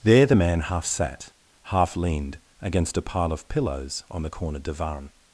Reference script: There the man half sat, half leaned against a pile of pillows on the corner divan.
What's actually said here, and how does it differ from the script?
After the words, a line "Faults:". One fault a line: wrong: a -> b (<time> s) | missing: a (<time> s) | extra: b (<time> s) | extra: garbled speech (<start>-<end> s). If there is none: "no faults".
There the man half sat, half leaned against a pile of pillows on the corner divan.
Faults:
no faults